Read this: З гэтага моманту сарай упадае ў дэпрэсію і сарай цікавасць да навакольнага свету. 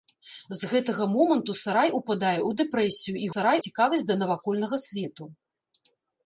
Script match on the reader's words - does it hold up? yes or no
yes